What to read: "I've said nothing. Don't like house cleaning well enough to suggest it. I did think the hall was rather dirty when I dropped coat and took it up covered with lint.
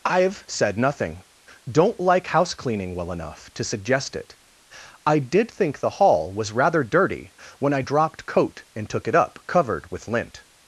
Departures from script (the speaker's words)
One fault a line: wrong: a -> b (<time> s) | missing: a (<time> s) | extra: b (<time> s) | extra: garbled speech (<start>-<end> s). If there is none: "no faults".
no faults